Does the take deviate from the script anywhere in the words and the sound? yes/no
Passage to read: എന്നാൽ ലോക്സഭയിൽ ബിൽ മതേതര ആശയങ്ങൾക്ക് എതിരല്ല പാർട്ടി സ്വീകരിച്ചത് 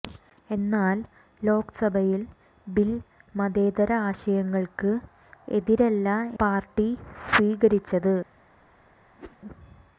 yes